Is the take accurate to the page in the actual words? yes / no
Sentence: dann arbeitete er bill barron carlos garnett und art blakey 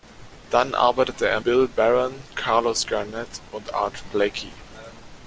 yes